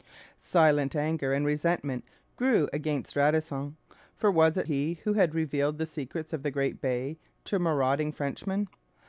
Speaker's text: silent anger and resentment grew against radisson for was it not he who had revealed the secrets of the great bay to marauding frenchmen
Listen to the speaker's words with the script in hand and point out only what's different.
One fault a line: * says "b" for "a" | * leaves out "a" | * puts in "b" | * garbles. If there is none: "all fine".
* leaves out "not"